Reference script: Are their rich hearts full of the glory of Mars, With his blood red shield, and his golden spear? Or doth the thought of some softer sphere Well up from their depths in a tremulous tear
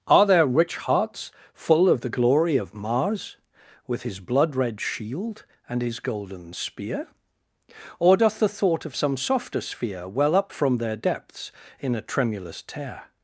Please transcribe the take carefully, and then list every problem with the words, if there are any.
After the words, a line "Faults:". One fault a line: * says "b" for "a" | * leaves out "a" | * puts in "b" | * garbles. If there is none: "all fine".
Are their rich hearts full of the glory of Mars, With his blood red shield, and his golden spear? Or doth the thought of some softer sphere Well up from their depths in a tremulous tear
Faults:
all fine